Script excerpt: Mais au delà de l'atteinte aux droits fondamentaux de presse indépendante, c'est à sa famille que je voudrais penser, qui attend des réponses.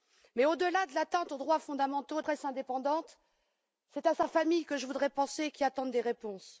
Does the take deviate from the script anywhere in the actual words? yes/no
no